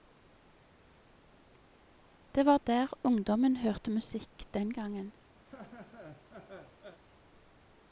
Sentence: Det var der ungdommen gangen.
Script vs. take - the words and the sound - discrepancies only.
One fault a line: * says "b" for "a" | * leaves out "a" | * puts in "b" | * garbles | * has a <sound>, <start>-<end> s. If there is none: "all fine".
* puts in "hørte musikk den"
* has a laugh, 5.4-7.0 s